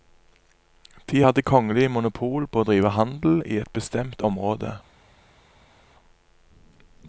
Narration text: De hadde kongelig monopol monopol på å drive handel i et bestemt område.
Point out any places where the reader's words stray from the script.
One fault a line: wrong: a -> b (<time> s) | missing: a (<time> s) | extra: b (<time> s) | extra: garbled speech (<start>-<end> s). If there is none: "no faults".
missing: monopol (2.5 s)